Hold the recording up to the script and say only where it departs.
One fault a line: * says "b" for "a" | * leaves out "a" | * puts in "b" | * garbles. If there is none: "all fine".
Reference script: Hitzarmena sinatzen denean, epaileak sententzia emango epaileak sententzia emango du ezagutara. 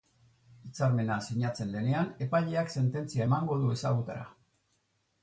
* leaves out "epaileak sententzia emango"